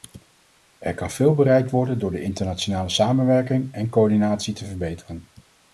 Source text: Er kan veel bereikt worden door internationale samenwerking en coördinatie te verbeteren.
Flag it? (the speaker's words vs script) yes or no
yes